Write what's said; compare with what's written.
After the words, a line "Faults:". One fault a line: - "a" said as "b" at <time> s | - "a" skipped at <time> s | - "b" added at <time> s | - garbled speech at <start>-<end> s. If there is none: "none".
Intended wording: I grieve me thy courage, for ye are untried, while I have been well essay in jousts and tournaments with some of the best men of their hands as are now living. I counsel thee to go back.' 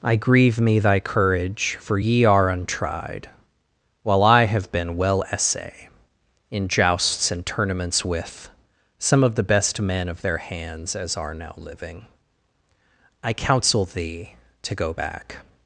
I grieve me thy courage, for ye are untried, while I have been well essay in jousts and tournaments with some of the best men of their hands as are now living. I counsel thee to go back.'
Faults:
none